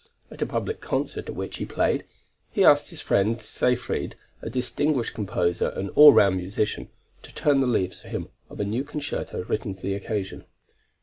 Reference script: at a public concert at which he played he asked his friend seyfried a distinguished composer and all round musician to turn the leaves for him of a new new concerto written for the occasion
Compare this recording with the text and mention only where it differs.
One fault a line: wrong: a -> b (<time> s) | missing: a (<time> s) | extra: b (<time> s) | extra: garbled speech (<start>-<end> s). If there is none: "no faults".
missing: new (8.8 s)